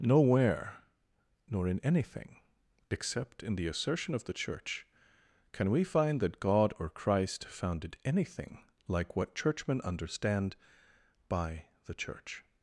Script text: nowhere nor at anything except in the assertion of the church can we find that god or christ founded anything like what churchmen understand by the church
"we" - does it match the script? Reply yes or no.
yes